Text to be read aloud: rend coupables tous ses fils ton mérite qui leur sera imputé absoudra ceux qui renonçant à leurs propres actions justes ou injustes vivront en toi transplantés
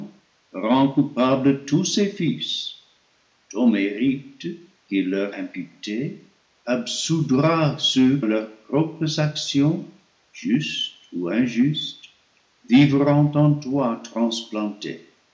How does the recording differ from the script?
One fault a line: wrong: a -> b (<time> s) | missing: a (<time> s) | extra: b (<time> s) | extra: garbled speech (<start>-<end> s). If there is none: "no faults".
missing: sera (5.3 s)
missing: qui renonçant à (8.2 s)